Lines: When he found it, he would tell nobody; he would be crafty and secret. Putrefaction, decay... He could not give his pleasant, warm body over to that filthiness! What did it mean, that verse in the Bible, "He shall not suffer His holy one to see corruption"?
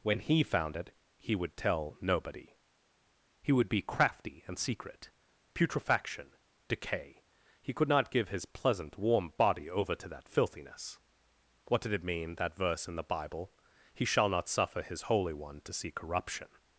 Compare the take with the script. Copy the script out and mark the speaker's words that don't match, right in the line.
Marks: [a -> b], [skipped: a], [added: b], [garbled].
When he found it, he would tell nobody; he would be crafty and secret. Putrefaction, decay... He could not give his pleasant, warm body over to that filthiness! What did it mean, that verse in the Bible, "He shall not suffer His holy one to see corruption"?